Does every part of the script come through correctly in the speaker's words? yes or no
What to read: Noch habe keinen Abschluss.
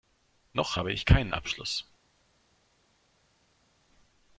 no